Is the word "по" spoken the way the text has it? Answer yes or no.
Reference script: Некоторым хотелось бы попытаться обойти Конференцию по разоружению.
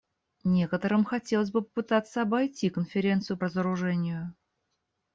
no